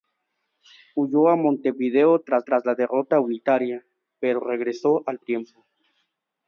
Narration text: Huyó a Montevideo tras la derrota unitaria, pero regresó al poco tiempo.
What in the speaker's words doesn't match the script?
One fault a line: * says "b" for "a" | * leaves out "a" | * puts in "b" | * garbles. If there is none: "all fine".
* puts in "tras"
* leaves out "poco"